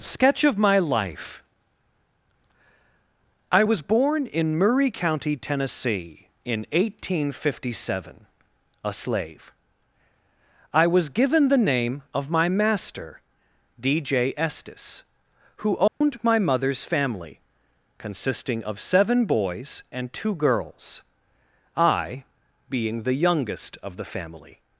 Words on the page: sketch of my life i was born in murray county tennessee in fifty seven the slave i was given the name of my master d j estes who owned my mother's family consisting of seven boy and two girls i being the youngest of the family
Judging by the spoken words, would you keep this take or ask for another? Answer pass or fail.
fail